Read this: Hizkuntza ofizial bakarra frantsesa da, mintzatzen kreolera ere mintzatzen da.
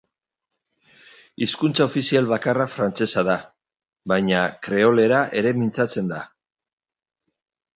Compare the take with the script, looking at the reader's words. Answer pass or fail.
fail